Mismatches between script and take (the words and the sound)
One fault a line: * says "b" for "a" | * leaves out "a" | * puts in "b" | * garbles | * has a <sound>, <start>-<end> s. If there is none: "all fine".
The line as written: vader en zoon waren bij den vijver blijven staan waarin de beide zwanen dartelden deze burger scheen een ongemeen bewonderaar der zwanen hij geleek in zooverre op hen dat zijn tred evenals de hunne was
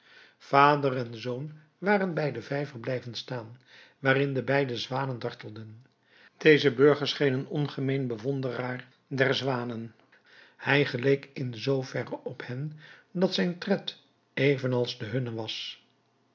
all fine